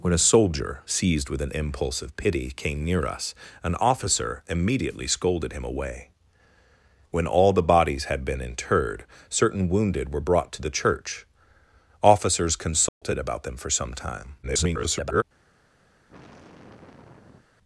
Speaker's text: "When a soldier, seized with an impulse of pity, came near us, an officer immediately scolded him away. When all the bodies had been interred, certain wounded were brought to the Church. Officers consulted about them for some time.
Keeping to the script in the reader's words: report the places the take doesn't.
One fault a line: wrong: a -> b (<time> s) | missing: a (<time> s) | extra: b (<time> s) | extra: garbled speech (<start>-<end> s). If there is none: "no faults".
extra: garbled speech (14.4-15.2 s)